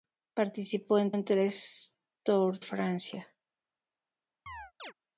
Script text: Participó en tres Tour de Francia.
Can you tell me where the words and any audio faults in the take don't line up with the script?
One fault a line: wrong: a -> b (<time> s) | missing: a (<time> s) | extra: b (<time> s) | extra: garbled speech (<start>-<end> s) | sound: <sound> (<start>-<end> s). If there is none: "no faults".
extra: en (1.1 s)
missing: de (2.6 s)
sound: chirp (4.5-4.9 s)